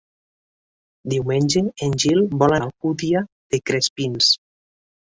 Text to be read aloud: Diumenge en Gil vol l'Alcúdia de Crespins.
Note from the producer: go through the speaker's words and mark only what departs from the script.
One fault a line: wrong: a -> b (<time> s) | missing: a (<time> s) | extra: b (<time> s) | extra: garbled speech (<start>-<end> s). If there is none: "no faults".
no faults